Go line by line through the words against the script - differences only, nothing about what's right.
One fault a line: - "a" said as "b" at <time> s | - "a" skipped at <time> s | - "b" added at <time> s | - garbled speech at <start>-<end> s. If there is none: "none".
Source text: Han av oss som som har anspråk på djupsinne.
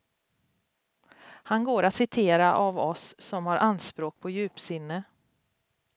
- "går att citera" added at 1.6 s
- "som" skipped at 3.5 s